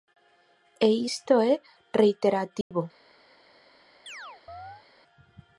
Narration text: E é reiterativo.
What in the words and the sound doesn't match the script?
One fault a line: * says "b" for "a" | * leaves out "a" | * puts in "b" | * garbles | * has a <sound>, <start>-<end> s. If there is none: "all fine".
* puts in "isto"
* has a dropout, 2.6-2.7 s
* has a chirp, 4.1-4.8 s